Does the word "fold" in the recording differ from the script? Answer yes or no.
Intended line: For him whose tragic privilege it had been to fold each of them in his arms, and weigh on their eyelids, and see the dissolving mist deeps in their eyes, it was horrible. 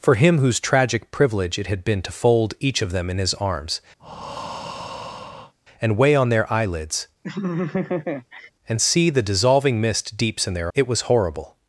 no